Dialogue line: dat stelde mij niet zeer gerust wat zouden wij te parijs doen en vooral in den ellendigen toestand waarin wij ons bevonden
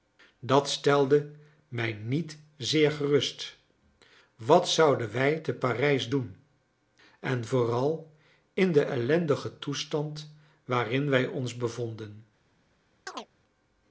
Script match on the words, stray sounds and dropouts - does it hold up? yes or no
no